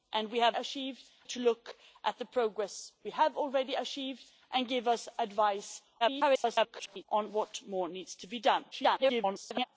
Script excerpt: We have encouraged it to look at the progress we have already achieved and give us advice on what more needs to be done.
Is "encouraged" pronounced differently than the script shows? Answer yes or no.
yes